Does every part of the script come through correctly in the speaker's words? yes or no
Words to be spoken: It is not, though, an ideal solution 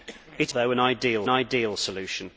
no